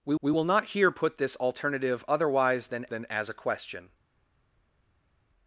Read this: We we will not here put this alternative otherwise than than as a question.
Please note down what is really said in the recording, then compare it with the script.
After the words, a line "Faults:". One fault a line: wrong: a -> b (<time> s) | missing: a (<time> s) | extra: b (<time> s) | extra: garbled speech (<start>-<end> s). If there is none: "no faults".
We we will not here put this alternative otherwise than than as a question.
Faults:
no faults